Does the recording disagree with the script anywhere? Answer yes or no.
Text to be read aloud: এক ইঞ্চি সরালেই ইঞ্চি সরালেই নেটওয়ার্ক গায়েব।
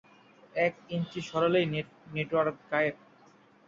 yes